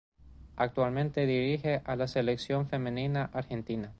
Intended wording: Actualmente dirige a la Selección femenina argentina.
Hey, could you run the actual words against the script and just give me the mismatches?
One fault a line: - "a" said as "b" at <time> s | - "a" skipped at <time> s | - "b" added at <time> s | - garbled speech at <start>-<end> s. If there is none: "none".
none